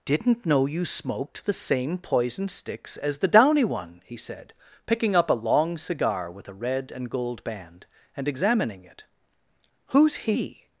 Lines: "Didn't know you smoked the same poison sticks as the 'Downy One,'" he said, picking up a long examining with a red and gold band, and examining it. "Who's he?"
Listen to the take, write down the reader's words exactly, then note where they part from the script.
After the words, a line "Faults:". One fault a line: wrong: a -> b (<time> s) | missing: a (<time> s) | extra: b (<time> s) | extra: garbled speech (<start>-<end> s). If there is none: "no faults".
"Didn't know you smoked the same poison sticks as the 'Downy One,'" he said, picking up a long cigar with a red and gold band, and examining it. "Who's he?"
Faults:
wrong: examining -> cigar (5.8 s)